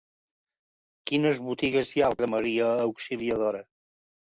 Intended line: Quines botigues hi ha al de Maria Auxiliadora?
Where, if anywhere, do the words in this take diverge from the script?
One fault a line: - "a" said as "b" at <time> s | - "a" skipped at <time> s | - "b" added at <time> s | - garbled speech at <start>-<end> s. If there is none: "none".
none